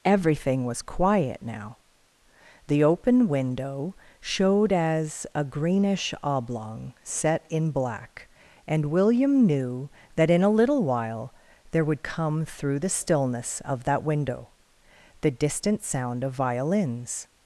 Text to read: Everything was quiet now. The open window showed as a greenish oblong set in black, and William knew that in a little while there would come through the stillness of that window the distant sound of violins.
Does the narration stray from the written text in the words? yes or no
no